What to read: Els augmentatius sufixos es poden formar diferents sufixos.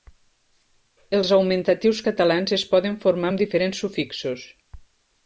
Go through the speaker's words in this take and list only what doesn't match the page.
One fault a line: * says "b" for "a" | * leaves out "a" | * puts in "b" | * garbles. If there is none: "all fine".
* says "catalans" for "sufixos"
* puts in "amb"